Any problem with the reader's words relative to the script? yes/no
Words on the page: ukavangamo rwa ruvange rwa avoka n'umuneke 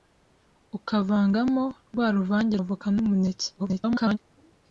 yes